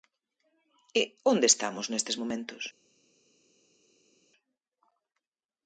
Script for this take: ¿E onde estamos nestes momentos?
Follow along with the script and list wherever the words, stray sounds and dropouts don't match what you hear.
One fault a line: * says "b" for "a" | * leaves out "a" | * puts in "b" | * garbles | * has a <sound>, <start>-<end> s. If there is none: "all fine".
all fine